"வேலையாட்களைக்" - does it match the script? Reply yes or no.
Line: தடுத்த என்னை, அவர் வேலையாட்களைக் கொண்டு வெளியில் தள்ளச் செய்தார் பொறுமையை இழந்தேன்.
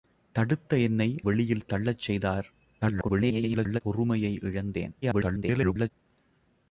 no